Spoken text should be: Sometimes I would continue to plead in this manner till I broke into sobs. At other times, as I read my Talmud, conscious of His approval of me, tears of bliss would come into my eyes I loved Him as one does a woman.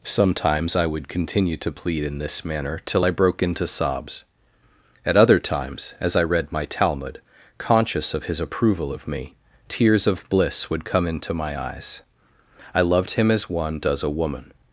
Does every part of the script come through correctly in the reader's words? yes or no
yes